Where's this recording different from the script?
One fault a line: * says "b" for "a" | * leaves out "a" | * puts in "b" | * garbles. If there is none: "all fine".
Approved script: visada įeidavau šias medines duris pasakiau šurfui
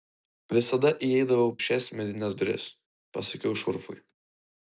all fine